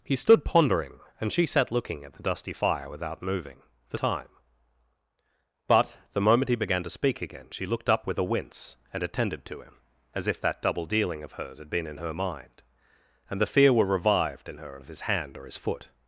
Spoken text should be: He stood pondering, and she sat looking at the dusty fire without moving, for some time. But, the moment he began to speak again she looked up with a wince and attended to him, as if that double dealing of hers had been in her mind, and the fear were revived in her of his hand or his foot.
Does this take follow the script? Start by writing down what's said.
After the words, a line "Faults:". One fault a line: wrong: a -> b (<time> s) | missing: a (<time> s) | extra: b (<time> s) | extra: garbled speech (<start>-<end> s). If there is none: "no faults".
He stood pondering, and she sat looking at the dusty fire without moving, for time. But, the moment he began to speak again she looked up with a wince and attended to him, as if that double dealing of hers had been in her mind, and the fear were revived in her of his hand or his foot.
Faults:
missing: some (4.0 s)